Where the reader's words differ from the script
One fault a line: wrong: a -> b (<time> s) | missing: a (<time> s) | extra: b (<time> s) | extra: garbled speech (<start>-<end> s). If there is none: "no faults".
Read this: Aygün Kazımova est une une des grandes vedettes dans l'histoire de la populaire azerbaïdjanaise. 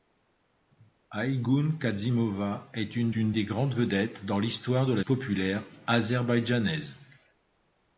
no faults